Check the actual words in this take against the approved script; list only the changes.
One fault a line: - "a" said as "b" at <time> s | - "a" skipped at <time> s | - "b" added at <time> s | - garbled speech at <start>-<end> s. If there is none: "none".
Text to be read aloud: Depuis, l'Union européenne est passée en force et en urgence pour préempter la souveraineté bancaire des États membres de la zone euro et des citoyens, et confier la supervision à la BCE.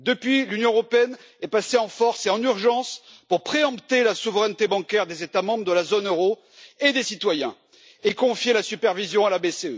none